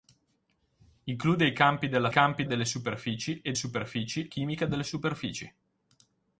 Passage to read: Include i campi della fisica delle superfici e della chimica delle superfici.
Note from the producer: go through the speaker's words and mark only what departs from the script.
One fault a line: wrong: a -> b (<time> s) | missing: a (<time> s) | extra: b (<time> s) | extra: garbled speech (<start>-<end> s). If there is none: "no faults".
wrong: fisica -> campi (2.1 s)
wrong: della -> superfici (3.5 s)